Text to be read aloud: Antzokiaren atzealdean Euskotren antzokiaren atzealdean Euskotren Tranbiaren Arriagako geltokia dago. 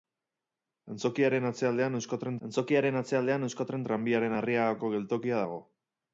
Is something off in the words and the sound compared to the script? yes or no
no